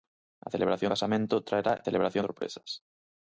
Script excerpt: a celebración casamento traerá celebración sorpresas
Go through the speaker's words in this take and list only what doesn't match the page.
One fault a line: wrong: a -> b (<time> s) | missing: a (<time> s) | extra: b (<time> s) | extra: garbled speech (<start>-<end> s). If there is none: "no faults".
no faults